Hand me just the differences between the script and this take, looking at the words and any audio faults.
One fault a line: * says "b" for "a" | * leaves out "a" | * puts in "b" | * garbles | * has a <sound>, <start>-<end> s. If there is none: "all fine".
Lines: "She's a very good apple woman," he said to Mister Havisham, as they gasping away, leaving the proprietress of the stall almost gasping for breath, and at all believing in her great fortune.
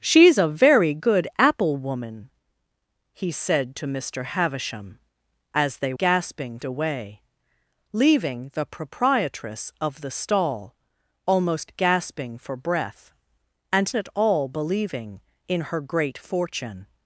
all fine